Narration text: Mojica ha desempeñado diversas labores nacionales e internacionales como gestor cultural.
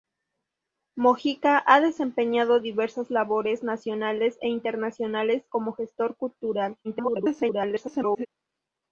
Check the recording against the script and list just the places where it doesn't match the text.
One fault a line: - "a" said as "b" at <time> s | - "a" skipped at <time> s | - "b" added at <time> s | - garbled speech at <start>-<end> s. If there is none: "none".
- garbled speech at 6.8-8.3 s